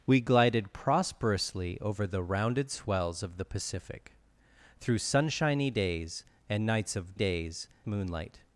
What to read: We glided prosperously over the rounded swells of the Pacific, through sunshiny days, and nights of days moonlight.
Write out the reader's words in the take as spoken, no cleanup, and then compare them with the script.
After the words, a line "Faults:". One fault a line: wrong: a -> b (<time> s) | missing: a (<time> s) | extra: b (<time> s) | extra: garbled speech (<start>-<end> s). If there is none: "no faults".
We glided prosperously over the rounded swells of the Pacific, through sunshiny days, and nights of days moonlight.
Faults:
no faults